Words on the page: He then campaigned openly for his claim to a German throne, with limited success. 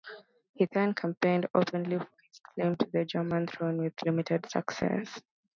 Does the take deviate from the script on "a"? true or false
true